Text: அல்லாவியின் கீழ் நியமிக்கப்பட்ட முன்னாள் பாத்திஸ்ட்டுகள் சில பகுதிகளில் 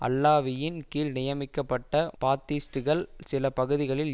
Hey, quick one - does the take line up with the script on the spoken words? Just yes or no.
no